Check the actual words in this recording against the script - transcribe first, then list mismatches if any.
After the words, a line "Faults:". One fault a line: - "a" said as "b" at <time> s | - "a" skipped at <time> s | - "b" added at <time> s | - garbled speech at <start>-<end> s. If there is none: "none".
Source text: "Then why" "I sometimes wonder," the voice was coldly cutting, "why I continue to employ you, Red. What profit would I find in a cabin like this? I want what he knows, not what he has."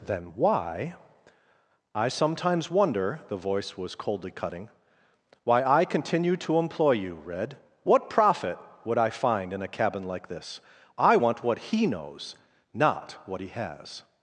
"Then why" "I sometimes wonder," the voice was coldly cutting, "why I continue to employ you, Red. What profit would I find in a cabin like this? I want what he knows, not what he has."
Faults:
none